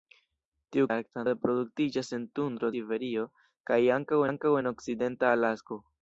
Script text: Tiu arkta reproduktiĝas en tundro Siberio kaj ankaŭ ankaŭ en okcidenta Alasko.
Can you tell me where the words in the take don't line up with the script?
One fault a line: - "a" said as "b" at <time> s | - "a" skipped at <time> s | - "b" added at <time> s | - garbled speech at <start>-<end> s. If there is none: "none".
none